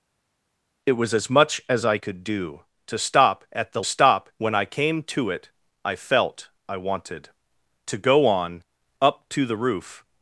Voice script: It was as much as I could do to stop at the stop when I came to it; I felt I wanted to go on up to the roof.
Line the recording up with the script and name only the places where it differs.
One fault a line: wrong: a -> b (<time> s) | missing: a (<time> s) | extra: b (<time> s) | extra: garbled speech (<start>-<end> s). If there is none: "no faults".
no faults